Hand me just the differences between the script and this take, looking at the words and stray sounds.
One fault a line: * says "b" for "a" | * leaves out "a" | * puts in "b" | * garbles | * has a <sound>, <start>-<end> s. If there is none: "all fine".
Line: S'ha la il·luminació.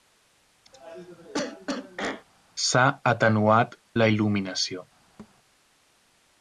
* has a cough, 0.7-2.2 s
* puts in "atenuat"
* has a thud, 5.2-5.4 s